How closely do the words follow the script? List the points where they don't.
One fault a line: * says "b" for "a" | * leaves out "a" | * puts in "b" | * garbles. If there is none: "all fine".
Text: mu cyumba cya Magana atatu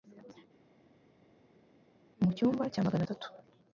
all fine